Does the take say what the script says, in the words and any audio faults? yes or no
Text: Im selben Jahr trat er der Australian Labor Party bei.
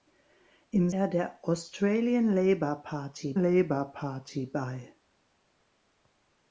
no